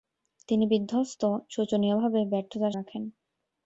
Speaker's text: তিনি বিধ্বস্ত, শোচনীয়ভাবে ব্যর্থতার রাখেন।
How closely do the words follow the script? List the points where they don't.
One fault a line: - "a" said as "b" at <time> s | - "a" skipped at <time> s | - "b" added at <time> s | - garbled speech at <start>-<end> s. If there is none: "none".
none